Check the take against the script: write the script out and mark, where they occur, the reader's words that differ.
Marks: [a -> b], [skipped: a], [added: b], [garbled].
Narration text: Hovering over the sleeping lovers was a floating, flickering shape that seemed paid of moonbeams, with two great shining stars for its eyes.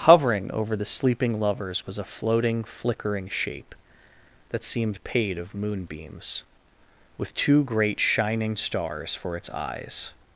Hovering over the sleeping lovers was a floating, flickering shape that seemed paid of moonbeams, with two great shining stars for its eyes.